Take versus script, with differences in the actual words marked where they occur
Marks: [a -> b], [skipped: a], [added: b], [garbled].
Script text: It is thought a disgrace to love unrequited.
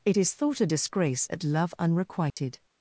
It is thought a disgrace [to -> at] love unrequited.